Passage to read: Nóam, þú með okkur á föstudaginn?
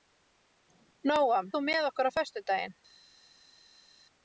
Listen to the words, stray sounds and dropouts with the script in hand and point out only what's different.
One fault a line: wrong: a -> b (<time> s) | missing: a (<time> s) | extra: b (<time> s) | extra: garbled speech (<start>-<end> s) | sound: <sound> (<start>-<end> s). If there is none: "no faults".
no faults